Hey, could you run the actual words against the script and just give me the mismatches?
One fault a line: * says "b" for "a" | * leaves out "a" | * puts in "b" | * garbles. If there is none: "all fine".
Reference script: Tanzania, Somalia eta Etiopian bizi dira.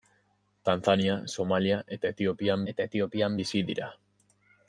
* puts in "eta Etiopian"